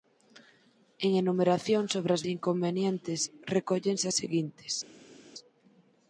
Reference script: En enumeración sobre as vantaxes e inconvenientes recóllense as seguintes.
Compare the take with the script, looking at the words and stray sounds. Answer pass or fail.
fail